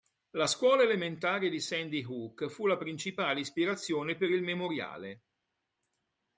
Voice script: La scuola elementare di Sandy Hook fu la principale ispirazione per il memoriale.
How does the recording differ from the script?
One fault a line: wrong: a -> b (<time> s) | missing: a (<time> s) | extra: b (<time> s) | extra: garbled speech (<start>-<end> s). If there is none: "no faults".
no faults